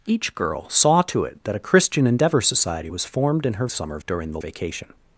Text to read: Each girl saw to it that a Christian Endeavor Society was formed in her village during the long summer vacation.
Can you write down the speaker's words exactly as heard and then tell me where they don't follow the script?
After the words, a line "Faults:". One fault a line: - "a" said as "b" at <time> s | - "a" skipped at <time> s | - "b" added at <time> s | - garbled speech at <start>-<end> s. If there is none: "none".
Each girl saw to it that a Christian Endeavor Society was formed in her summer during the vacation.
Faults:
- "village" said as "summer" at 3.7 s
- "long summer" skipped at 4.4 s